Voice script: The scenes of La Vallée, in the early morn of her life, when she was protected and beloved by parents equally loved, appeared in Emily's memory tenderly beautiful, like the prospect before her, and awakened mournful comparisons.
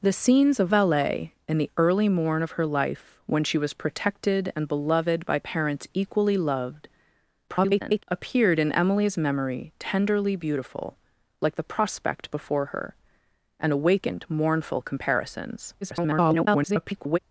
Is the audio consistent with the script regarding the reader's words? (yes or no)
no